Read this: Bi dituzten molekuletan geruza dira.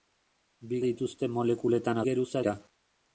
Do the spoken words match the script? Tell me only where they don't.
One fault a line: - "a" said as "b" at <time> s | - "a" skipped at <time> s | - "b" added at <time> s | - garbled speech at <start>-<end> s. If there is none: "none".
none